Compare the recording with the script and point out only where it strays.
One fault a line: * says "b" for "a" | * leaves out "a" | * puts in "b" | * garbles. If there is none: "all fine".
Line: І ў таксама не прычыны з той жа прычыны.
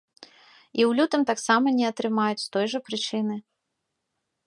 * puts in "лютым"
* says "атрымаюць" for "прычыны"